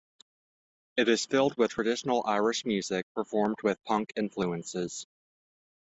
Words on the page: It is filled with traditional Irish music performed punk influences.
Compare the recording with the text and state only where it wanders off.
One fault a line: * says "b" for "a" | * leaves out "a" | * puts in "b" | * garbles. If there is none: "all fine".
* puts in "with"